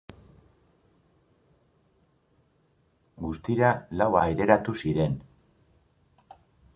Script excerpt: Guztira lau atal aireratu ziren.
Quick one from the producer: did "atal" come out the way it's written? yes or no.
no